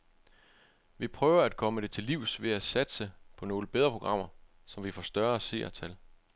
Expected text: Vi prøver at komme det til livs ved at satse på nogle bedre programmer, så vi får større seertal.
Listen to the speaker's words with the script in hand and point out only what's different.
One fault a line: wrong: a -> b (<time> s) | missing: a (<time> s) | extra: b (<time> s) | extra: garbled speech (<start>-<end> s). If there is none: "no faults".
no faults